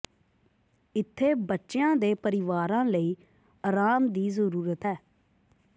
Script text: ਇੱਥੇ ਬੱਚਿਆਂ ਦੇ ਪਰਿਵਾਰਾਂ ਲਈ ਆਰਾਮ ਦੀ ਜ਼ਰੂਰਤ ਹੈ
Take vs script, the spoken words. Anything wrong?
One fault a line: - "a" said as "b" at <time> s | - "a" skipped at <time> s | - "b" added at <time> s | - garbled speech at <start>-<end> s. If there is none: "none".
none